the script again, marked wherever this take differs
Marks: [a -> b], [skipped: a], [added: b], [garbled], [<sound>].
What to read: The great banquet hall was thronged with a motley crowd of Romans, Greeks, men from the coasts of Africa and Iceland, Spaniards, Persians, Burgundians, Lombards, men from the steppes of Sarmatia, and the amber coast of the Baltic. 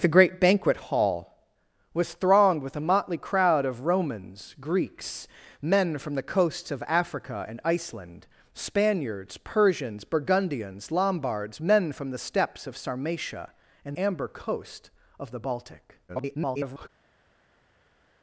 The great banquet hall was thronged with a motley crowd of Romans, Greeks, men from the coasts of Africa and Iceland, Spaniards, Persians, Burgundians, Lombards, men from the steppes of Sarmatia, and [skipped: the] amber coast of the Baltic. [garbled]